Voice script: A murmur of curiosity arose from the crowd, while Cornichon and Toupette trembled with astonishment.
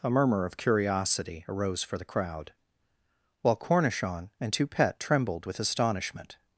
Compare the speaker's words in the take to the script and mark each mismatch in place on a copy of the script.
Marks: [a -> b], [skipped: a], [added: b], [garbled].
A murmur of curiosity arose [from -> for] the crowd, while Cornichon and Toupette trembled with astonishment.